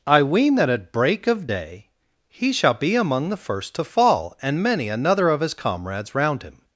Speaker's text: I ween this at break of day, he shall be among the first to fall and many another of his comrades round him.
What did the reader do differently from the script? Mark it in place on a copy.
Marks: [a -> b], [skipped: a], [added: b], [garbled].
I ween [this -> that] at break of day, he shall be among the first to fall and many another of his comrades round him.